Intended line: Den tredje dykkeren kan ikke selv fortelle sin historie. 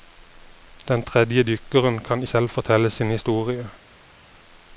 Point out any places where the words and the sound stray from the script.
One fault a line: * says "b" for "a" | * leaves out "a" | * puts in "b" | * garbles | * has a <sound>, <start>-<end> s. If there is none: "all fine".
* leaves out "ikke"